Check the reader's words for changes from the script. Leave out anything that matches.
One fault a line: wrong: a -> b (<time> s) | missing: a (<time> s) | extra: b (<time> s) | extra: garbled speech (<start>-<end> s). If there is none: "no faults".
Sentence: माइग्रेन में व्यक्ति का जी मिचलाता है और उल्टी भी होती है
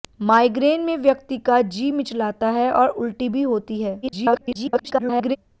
extra: garbled speech (4.0-5.4 s)